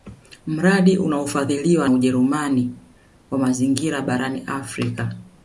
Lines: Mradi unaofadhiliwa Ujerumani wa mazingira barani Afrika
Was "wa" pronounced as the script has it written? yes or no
yes